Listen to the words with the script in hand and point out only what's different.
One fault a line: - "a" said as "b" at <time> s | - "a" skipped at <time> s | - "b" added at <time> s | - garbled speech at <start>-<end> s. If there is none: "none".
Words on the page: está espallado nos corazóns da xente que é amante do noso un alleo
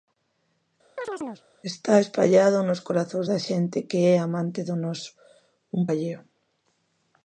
none